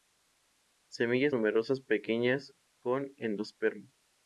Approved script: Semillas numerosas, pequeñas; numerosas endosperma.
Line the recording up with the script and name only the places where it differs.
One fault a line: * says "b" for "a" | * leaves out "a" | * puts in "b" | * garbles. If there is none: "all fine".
* says "con" for "numerosas"